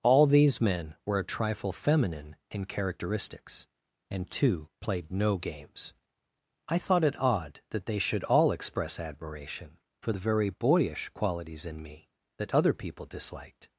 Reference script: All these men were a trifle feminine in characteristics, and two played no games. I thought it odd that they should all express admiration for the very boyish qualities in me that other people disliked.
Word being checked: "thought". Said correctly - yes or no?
yes